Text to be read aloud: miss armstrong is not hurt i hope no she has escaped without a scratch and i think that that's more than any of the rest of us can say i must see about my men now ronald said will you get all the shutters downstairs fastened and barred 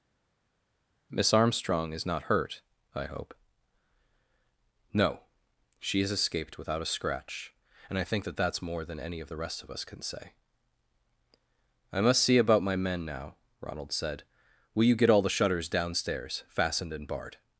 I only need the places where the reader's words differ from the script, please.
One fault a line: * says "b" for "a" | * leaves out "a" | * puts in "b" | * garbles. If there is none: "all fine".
all fine